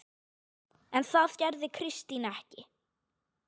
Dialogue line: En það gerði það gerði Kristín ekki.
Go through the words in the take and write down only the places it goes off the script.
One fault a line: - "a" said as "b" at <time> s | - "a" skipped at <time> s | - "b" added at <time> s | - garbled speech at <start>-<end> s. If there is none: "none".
- "það gerði" skipped at 1.7 s